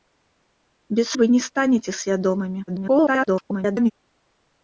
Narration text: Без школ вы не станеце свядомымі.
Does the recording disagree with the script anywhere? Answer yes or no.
yes